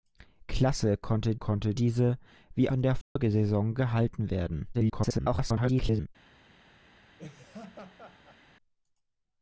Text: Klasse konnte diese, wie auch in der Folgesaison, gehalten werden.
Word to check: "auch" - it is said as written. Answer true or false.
false